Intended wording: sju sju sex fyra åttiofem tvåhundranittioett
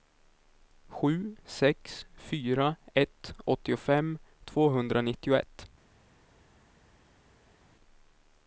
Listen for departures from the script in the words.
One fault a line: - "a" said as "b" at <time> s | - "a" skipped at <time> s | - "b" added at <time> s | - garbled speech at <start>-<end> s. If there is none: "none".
- "sju" skipped at 1.4 s
- "ett" added at 2.9 s